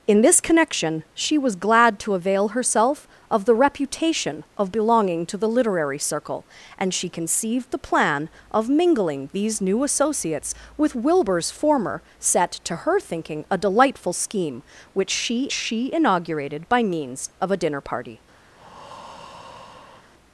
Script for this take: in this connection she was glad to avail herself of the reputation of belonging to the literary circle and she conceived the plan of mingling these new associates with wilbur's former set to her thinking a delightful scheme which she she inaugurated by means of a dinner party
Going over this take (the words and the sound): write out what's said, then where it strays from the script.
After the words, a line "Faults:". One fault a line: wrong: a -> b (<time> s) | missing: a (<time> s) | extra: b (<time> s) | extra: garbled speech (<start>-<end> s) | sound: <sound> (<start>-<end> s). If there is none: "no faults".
in this connection she was glad to avail herself of the reputation of belonging to the literary circle and she conceived the plan of mingling these new associates with wilbur's former set to her thinking a delightful scheme which she she inaugurated by means of a dinner party
Faults:
sound: breath (18.5-20.1 s)